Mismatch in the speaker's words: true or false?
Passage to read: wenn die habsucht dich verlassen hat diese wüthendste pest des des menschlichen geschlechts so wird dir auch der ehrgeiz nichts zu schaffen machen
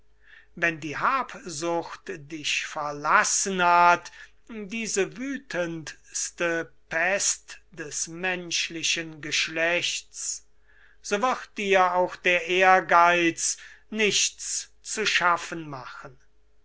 true